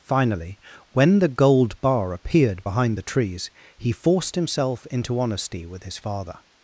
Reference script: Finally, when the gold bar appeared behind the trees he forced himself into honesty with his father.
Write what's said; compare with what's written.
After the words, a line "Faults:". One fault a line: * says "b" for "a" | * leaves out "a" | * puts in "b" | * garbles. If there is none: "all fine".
Finally, when the gold bar appeared behind the trees he forced himself into honesty with his father.
Faults:
all fine